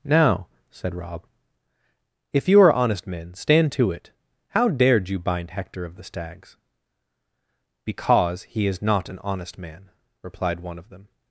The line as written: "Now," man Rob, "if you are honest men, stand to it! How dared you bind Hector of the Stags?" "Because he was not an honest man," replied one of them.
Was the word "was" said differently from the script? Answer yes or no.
yes